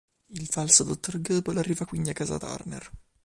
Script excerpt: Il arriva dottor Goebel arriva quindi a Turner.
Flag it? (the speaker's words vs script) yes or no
yes